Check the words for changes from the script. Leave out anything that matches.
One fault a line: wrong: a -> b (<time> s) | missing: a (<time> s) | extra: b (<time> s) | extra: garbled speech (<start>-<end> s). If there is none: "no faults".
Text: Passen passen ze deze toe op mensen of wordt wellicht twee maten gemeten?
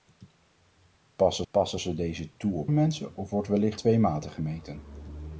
no faults